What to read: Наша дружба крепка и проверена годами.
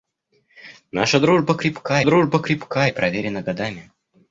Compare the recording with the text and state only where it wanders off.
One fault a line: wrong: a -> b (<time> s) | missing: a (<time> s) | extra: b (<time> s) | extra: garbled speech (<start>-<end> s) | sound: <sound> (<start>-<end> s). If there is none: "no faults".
extra: дружба крепка (2.0 s)